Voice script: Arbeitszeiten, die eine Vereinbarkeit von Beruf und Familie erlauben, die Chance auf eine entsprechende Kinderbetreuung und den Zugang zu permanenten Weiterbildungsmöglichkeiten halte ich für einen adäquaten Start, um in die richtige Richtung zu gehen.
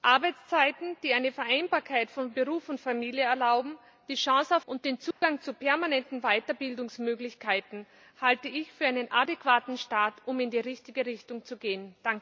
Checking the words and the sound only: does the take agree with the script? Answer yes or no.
no